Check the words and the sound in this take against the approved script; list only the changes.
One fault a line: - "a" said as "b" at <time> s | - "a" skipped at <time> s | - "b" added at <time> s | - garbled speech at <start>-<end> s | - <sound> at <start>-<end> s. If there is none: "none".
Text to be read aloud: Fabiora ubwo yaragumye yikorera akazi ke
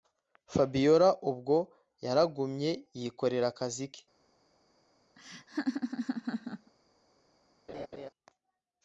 - laugh at 5.2-6.7 s
- laugh at 7.7-8.1 s